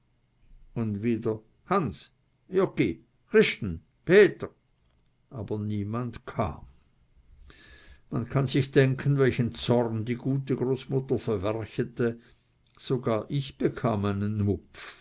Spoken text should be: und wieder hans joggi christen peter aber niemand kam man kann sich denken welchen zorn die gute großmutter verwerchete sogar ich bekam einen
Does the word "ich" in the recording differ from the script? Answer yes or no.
no